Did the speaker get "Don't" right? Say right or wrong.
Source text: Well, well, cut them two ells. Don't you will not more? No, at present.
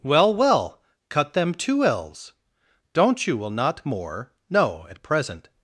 right